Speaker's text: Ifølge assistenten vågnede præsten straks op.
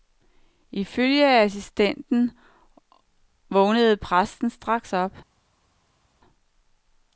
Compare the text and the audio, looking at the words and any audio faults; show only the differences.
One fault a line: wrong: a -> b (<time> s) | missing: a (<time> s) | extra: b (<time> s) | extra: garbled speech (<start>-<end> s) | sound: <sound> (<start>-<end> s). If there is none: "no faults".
no faults